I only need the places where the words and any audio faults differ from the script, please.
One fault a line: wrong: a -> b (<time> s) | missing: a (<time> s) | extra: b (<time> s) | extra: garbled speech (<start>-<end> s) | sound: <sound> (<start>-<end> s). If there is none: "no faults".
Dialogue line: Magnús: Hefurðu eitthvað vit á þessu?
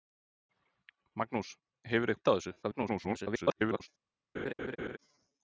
missing: eitthvað (2.1 s)
extra: garbled speech (2.6-3.9 s)
sound: laugh (4.3-5.0 s)